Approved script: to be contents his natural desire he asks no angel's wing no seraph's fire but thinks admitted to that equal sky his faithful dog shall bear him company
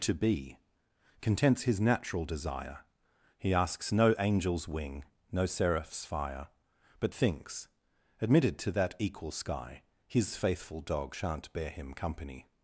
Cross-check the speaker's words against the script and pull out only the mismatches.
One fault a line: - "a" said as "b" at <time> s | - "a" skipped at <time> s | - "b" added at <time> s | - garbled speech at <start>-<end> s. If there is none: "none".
- "shall" said as "shan't" at 11.1 s